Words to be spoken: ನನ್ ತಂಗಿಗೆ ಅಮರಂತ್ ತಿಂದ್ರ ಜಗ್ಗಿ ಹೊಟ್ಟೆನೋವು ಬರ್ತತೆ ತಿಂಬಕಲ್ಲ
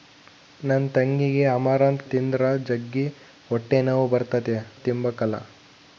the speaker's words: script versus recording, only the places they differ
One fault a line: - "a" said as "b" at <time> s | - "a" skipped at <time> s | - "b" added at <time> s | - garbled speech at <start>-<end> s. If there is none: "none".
none